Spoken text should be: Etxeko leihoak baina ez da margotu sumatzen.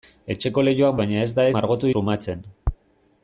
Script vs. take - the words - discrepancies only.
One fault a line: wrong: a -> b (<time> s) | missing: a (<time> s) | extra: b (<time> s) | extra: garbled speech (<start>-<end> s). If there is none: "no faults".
no faults